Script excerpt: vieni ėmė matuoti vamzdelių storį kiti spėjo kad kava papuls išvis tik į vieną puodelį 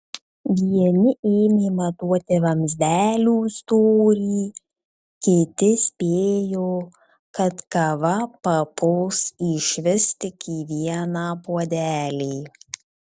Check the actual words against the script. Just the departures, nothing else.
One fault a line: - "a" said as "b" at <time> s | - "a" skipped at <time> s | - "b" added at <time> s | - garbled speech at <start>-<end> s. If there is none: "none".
none